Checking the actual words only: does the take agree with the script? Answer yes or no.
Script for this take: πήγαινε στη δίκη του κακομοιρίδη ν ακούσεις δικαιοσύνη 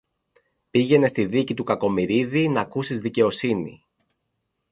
yes